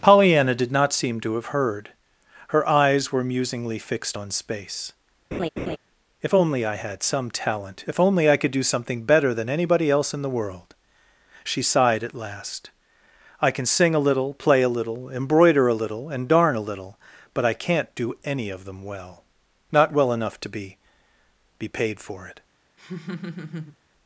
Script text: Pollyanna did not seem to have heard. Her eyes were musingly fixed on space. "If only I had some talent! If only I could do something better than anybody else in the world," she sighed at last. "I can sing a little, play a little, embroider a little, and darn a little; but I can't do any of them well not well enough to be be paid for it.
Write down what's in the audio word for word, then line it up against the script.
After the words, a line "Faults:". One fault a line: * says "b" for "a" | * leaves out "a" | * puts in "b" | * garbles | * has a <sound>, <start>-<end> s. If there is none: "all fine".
Pollyanna did not seem to have heard. Her eyes were musingly fixed on space. "If only I had some talent! If only I could do something better than anybody else in the world," she sighed at last. "I can sing a little, play a little, embroider a little, and darn a little; but I can't do any of them well not well enough to be be paid for it.
Faults:
* has a laugh, 5.3-5.8 s
* has a laugh, 22.8-23.8 s